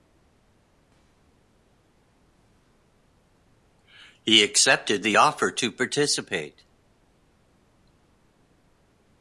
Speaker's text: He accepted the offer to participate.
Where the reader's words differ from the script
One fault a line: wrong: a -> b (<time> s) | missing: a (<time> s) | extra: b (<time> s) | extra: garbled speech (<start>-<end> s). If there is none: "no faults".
no faults